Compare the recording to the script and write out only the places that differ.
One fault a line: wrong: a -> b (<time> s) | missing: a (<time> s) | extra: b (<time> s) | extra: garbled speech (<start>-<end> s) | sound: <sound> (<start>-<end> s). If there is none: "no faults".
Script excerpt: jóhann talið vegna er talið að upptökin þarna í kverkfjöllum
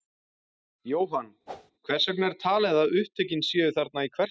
sound: whoosh (1.5-1.7 s)
wrong: talið -> hvers (1.9 s)
extra: séu (3.5 s)